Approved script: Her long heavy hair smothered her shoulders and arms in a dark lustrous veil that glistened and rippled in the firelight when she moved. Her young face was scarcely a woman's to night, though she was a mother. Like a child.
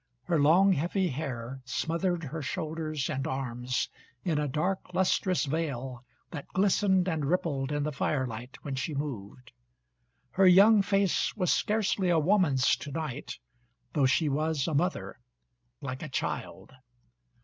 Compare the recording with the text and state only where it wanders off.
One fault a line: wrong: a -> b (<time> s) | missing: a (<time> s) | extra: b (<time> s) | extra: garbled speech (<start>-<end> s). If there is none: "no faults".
no faults